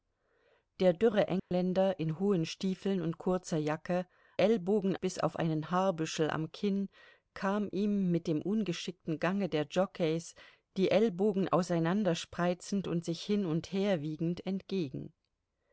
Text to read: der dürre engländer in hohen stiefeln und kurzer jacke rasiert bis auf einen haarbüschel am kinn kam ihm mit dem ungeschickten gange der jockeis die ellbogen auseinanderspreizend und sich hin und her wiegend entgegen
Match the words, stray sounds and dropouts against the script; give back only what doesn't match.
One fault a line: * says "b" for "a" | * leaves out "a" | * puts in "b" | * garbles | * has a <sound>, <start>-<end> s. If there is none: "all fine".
* has a dropout, 1.4-1.5 s
* says "ellbogen" for "rasiert"